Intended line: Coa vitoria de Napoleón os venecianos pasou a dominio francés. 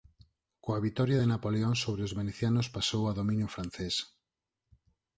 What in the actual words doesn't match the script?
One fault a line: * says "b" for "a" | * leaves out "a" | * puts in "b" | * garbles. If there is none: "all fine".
* puts in "sobre"